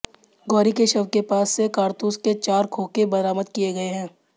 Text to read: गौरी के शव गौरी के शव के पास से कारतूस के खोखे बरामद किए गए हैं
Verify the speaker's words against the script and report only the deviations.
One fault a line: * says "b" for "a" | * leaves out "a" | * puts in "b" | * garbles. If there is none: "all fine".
* leaves out "गौरी"
* leaves out "शव के"
* puts in "चार"